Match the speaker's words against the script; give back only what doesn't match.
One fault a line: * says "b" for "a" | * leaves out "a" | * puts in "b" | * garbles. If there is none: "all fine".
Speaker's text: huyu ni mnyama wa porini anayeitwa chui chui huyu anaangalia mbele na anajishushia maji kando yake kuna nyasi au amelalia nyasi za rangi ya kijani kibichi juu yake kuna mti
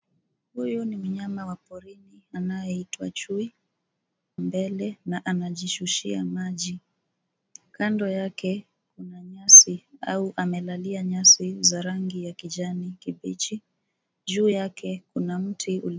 * leaves out "chui huyu anaangalia"